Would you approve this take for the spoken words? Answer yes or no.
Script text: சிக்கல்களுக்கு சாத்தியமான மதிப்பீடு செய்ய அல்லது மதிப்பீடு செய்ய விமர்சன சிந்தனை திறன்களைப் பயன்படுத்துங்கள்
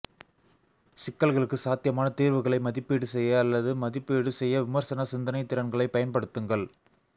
no